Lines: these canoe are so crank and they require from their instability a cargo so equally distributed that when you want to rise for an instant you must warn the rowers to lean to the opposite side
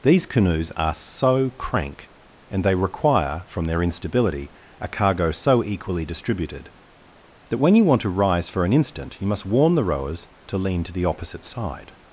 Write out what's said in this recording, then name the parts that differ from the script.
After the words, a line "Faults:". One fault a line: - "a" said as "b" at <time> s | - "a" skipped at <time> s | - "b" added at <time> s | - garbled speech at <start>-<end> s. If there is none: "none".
these canoes are so crank and they require from their instability a cargo so equally distributed that when you want to rise for an instant you must warn the rowers to lean to the opposite side
Faults:
- "canoe" said as "canoes" at 0.2 s